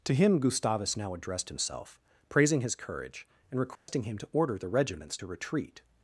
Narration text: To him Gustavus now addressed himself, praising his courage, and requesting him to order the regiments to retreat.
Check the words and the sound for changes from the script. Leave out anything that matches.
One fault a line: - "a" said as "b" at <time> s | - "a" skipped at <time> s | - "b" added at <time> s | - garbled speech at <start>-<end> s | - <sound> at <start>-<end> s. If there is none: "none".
- dropout at 3.8-3.9 s